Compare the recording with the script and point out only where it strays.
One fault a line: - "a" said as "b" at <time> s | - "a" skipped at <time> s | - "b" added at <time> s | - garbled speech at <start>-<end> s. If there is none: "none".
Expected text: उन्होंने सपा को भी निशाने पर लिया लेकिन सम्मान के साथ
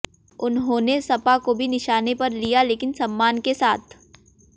none